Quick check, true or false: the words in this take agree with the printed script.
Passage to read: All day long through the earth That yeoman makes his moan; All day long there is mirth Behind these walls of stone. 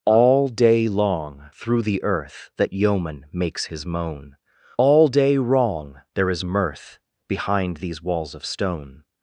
false